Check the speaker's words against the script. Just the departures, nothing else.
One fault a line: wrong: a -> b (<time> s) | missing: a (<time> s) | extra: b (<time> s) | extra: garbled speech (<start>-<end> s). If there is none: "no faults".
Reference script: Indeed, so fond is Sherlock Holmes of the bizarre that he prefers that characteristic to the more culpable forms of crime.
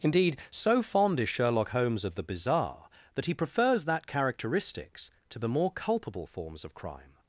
wrong: characteristic -> characteristics (4.1 s)